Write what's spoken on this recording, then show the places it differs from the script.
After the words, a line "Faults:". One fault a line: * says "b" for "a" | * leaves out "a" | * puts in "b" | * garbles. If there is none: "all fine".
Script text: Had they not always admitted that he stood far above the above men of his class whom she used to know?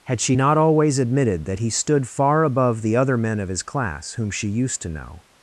Had she not always admitted that he stood far above the other men of his class whom she used to know?
Faults:
* says "she" for "they"
* says "other" for "above"